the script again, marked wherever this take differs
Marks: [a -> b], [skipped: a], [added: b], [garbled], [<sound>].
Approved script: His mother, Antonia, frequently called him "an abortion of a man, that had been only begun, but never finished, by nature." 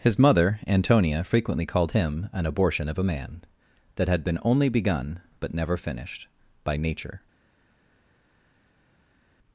His mother, Antonia, frequently called him "an abortion of a man, that had been only begun, but never finished, by nature."